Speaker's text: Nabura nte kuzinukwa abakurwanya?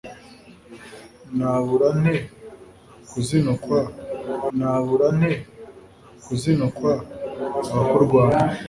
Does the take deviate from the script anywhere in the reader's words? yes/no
yes